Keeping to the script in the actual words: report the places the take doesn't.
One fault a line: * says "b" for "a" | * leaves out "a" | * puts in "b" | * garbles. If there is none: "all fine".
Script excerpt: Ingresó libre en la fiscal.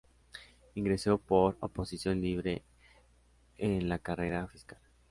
* puts in "por oposición"
* puts in "carrera"